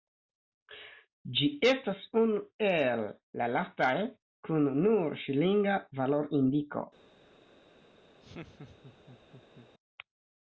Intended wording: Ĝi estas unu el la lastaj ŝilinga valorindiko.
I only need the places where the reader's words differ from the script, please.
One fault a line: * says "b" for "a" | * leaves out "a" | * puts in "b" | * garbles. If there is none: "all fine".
* puts in "kun nur"